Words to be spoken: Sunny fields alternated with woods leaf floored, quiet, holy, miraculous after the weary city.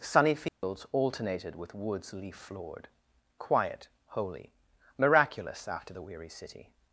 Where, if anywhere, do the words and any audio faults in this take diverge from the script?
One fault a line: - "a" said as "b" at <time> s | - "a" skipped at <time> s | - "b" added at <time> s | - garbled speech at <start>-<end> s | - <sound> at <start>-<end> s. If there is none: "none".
- dropout at 0.5-0.6 s